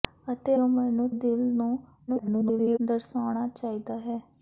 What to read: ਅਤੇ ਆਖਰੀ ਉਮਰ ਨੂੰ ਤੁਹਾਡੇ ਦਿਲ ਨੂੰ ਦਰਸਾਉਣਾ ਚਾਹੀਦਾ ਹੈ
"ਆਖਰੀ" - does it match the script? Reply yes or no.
no